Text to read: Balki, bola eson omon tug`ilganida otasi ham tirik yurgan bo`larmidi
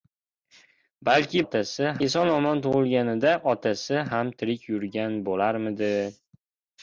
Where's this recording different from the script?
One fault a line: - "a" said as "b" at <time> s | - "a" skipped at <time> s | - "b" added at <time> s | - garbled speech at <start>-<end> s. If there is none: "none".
- "bola" said as "otasi" at 1.5 s